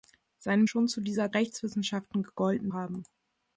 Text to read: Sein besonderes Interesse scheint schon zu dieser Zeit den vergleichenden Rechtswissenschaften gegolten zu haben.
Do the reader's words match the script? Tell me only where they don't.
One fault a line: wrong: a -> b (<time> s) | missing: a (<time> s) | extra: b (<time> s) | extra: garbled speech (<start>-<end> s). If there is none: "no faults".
missing: besonderes Interesse scheint (0.7 s)
missing: Zeit den vergleichenden (1.3 s)
missing: zu (2.7 s)